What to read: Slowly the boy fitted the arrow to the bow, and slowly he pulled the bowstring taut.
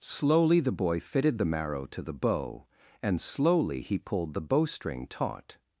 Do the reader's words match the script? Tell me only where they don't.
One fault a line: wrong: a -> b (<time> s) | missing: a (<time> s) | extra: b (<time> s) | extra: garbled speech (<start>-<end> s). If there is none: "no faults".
wrong: arrow -> marrow (1.4 s)